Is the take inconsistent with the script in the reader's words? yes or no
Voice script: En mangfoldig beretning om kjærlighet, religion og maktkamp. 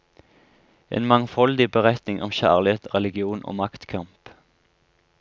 no